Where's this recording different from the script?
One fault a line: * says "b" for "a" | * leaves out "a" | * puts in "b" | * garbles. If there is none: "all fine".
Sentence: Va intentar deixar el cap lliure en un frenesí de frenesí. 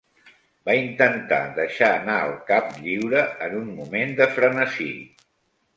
* puts in "anar"
* says "moment" for "frenesí"